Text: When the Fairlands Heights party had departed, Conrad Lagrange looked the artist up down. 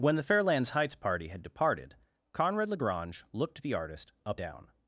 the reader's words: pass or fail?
pass